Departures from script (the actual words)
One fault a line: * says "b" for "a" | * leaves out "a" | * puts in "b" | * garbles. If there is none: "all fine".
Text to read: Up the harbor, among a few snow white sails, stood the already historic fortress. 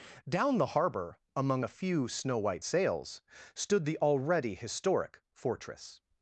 * says "Down" for "Up"